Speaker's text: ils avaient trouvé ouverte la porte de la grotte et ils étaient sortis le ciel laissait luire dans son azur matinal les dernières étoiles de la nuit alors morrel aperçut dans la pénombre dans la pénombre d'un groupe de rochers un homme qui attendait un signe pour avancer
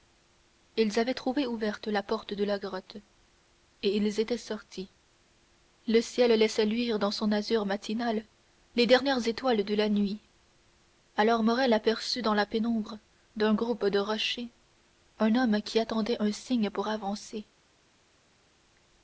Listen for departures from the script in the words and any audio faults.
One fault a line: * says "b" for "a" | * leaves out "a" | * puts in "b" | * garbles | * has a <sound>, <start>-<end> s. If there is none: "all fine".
* leaves out "dans la pénombre"